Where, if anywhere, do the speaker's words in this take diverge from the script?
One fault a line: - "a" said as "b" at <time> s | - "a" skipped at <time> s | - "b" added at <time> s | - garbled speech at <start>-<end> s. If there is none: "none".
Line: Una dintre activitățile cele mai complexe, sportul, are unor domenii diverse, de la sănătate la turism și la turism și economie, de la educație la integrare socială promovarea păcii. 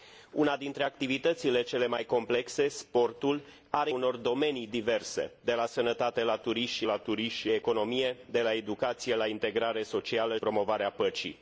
none